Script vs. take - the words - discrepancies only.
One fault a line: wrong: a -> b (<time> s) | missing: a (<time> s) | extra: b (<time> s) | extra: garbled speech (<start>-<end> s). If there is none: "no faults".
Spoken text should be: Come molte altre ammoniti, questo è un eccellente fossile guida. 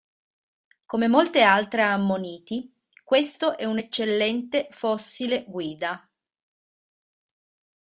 no faults